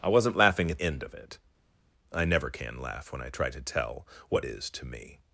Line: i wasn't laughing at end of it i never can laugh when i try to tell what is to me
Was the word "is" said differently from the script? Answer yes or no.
no